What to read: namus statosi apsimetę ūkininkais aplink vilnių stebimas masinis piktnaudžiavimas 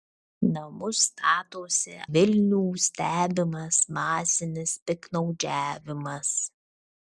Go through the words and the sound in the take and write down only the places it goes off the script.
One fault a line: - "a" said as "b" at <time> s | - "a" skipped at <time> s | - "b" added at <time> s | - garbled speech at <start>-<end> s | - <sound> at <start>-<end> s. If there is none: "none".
- "apsimetę ūkininkais aplink" skipped at 1.9 s